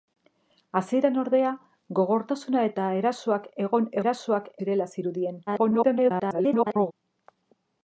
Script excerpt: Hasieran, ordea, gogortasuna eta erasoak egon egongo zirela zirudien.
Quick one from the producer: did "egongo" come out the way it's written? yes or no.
no